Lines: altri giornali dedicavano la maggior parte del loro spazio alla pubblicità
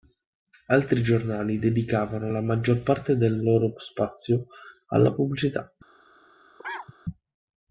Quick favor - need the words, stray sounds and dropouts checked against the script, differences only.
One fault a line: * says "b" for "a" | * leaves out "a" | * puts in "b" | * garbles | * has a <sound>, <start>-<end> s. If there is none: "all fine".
* has a cough, 6.6-6.9 s